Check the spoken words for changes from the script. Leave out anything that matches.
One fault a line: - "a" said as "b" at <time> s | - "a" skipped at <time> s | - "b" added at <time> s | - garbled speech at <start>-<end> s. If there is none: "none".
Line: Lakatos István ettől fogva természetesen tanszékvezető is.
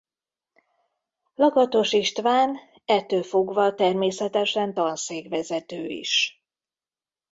none